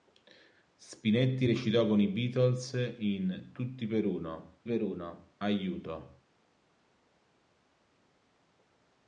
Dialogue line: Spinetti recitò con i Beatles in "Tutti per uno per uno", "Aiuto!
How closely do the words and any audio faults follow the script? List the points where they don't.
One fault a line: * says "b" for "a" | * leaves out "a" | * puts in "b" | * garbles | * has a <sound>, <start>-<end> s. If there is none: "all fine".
all fine